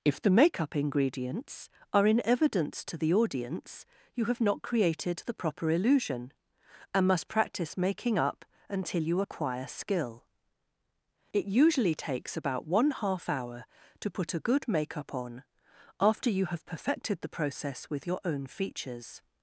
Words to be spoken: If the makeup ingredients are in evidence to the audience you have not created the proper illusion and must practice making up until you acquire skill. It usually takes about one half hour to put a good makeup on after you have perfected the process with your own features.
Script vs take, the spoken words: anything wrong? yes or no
no